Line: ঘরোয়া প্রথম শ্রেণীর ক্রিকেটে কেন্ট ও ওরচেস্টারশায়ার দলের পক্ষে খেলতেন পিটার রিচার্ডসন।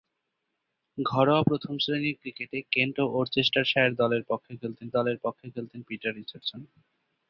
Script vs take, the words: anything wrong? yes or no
yes